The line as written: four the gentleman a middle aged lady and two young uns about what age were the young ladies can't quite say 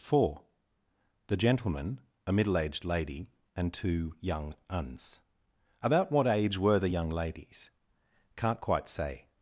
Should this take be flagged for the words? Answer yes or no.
no